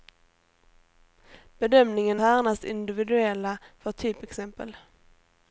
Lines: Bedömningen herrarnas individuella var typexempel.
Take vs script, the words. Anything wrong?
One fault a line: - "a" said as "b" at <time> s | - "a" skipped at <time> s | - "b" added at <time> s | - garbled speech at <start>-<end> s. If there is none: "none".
none